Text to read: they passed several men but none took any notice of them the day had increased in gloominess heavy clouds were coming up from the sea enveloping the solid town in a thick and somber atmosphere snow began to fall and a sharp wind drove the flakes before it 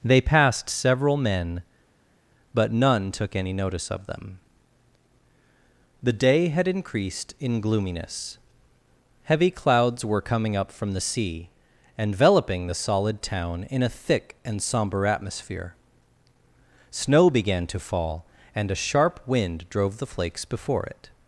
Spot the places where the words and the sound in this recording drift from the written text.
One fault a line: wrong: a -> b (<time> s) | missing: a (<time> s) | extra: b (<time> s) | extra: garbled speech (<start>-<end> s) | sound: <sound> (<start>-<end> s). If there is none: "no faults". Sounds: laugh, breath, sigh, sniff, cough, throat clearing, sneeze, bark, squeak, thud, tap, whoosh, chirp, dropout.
no faults